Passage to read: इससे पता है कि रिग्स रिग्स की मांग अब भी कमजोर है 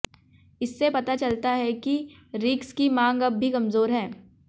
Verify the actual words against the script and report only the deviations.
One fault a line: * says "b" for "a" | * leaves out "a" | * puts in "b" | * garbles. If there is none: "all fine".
* puts in "चलता"
* leaves out "रिग्स"